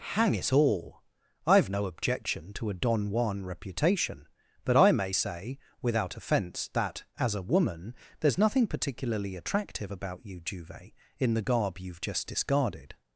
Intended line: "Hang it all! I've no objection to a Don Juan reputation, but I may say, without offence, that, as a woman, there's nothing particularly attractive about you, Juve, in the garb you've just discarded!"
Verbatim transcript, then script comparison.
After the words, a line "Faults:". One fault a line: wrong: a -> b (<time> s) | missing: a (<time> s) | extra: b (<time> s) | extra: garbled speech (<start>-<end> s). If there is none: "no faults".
"Hang it all! I've no objection to a Don Juan reputation, but I may say, without offence, that, as a woman, there's nothing particularly attractive about you, Juve, in the garb you've just discarded!"
Faults:
no faults